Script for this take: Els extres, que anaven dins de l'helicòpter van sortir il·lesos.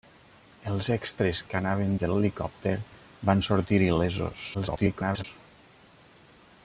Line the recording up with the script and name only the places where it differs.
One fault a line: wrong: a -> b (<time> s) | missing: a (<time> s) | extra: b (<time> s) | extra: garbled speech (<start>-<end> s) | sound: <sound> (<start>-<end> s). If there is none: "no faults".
missing: dins (1.9 s)
extra: garbled speech (4.5-5.2 s)